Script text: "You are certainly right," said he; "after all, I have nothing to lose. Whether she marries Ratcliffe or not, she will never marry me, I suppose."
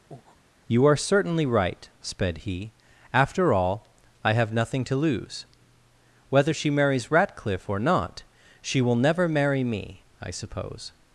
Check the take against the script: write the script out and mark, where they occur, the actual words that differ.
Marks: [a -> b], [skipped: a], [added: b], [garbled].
"You are certainly right," [said -> sped] he; "after all, I have nothing to lose. Whether she marries Ratcliffe or not, she will never marry me, I suppose."